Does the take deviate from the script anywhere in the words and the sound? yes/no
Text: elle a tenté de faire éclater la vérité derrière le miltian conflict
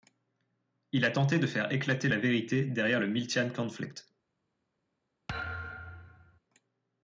yes